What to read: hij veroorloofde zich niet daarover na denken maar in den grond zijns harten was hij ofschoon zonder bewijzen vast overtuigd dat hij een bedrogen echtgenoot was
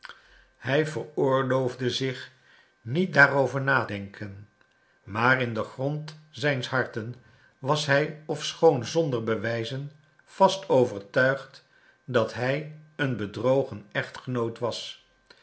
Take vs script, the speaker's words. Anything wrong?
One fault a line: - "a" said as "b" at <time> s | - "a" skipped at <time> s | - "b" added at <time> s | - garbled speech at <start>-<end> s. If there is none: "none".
none